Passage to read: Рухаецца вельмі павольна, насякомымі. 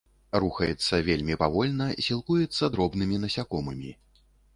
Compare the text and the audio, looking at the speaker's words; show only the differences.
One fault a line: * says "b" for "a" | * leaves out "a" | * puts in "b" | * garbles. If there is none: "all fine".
* puts in "сілкуецца дробнымі"